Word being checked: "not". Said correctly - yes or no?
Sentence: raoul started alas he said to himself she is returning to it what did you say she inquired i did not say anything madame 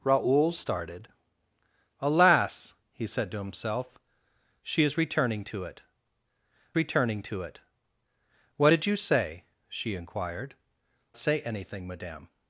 no